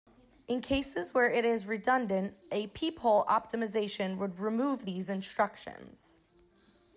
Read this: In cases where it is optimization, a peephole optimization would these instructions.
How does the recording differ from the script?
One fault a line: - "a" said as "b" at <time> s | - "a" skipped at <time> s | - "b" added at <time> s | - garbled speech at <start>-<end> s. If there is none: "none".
- "optimization" said as "redundant" at 1.7 s
- "remove" added at 4.4 s